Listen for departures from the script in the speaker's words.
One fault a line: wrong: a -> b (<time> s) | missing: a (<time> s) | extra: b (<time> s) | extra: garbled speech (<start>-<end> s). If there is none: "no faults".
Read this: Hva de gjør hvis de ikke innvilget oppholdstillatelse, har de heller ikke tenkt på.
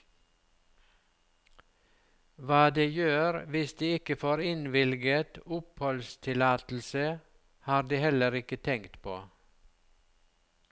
extra: får (4.2 s)